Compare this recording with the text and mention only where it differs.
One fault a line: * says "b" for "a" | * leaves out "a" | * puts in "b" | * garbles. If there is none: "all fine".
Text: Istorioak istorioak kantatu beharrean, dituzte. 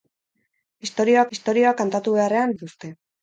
all fine